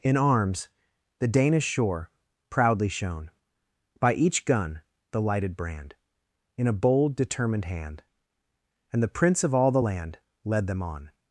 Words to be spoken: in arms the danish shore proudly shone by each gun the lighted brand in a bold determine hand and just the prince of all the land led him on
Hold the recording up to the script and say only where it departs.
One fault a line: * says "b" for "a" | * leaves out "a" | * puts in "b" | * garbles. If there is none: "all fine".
* says "determined" for "determine"
* leaves out "just"
* says "them" for "him"